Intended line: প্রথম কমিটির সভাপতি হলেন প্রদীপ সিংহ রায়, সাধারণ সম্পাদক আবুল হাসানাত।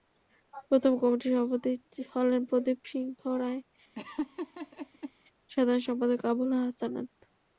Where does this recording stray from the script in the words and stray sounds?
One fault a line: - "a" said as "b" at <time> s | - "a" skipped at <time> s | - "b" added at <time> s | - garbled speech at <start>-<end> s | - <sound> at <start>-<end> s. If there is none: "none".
- laugh at 3.9-5.1 s